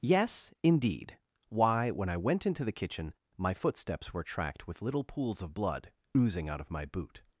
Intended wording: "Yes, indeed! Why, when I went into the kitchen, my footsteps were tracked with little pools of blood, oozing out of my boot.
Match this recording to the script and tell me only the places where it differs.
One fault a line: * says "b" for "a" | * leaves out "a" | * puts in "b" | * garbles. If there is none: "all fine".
all fine